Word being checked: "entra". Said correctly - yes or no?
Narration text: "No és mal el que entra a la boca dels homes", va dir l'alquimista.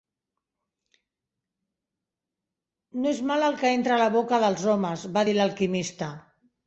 yes